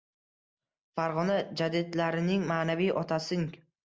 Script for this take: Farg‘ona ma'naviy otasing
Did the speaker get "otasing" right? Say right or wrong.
right